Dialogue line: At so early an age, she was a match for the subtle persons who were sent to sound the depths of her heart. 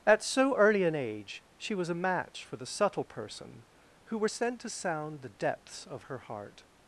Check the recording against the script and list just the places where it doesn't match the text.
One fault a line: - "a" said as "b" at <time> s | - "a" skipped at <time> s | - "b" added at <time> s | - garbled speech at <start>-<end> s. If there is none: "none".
- "persons" said as "person" at 3.0 s